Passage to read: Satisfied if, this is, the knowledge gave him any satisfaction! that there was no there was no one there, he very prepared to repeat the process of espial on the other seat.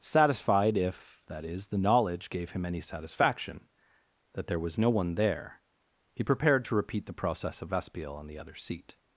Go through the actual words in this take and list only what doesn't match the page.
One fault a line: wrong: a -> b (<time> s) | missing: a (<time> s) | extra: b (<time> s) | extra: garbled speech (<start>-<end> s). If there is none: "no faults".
wrong: this -> that (1.3 s)
missing: there was no (4.9 s)
missing: very (6.2 s)